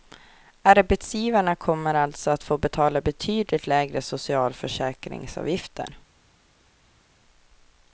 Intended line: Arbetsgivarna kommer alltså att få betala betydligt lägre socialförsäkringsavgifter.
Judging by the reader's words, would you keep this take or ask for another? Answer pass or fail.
pass